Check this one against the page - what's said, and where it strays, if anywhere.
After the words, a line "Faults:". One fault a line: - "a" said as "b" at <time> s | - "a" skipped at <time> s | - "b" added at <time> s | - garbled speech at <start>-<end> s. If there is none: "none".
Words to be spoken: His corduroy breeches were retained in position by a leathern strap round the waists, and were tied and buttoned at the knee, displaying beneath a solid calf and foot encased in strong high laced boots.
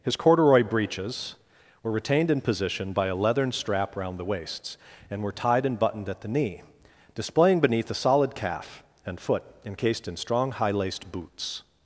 His corduroy breeches were retained in position by a leathern strap round the waists, and were tied and buttoned at the knee, displaying beneath a solid calf and foot encased in strong high laced boots.
Faults:
none